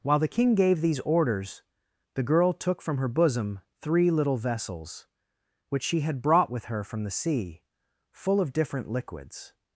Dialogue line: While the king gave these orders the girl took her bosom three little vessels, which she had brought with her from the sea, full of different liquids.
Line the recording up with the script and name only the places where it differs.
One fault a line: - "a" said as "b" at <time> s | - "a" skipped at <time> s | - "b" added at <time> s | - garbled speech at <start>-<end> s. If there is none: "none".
- "from" added at 2.8 s